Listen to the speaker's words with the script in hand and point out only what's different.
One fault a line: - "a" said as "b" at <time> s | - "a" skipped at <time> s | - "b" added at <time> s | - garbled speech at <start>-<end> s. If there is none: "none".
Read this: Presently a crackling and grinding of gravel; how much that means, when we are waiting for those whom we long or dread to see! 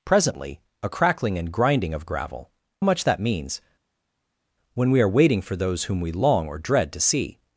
- "how" skipped at 2.5 s